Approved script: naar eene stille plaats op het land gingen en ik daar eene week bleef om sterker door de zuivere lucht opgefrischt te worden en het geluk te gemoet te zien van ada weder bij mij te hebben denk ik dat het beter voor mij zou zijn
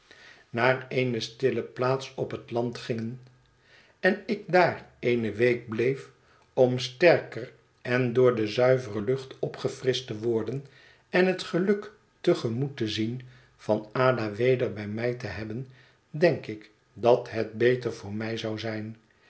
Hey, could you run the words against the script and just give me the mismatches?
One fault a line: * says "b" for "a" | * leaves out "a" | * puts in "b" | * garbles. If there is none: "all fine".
* puts in "en"